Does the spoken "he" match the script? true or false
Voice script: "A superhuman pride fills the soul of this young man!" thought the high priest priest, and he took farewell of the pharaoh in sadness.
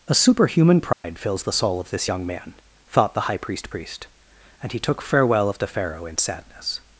true